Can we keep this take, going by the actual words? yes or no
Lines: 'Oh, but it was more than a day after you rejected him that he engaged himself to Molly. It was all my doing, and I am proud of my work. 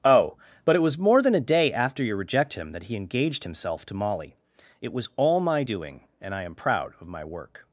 no